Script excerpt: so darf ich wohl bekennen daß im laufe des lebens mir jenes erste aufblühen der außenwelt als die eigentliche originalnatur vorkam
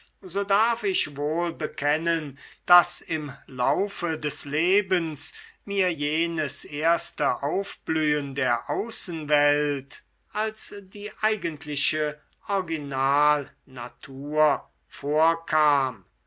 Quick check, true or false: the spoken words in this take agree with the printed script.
true